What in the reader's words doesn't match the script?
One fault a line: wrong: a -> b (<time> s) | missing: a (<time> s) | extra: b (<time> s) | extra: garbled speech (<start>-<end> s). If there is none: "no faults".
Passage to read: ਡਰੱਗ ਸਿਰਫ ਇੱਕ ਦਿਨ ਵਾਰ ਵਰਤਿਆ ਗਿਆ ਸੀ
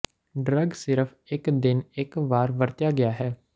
extra: ਇੱਕ (2.0 s)
wrong: ਸੀ -> ਹੈ (3.1 s)